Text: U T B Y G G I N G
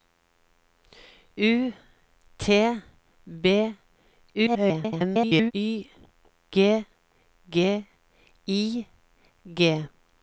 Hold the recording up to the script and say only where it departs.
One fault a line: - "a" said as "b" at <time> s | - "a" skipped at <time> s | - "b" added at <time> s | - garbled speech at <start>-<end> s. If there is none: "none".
- garbled speech at 4.3-5.5 s
- "N" skipped at 8.9 s